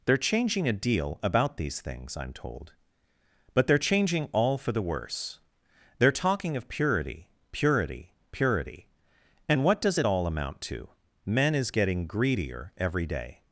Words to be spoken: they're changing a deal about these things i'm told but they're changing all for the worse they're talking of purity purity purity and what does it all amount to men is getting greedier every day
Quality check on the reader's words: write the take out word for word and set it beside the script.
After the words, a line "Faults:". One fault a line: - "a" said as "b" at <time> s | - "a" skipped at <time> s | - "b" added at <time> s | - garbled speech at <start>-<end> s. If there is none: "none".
they're changing a deal about these things i'm told but they're changing all for the worse they're talking of purity purity purity and what does it all amount to men is getting greedier every day
Faults:
none